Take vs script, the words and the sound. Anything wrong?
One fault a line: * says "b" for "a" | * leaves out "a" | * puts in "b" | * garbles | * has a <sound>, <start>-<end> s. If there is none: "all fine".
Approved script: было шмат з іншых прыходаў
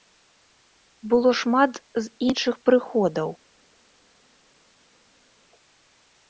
all fine